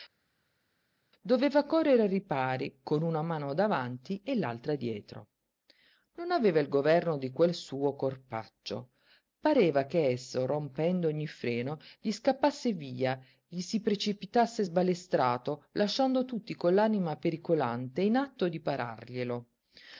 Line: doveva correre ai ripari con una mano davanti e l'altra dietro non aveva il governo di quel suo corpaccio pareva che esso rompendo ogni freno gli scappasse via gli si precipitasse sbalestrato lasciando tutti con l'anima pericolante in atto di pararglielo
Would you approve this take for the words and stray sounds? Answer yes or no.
yes